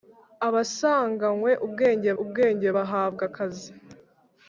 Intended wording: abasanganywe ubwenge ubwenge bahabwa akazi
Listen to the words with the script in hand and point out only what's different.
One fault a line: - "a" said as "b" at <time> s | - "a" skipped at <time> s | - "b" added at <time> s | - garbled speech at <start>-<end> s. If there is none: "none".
none